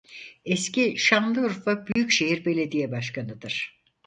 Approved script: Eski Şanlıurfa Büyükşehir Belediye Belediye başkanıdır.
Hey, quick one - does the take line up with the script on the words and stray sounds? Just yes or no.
no